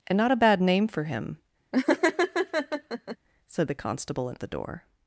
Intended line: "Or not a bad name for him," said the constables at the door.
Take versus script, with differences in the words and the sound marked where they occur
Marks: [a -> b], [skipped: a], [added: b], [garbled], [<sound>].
["Or -> And] not a bad name for him," [laugh] said the [constables -> constable] at the door.